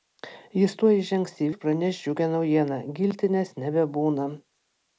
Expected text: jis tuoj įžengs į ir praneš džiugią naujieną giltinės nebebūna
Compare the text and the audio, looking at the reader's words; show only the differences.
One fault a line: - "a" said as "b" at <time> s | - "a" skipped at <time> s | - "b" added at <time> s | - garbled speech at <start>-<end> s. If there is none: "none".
none